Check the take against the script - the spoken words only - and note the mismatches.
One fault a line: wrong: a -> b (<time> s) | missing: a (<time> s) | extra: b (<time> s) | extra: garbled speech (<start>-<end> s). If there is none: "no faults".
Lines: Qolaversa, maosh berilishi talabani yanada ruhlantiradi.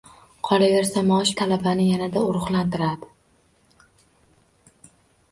missing: berilishi (1.3 s)